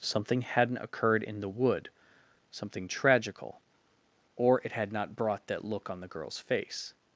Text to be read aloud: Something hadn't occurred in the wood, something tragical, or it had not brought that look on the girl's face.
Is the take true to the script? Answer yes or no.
yes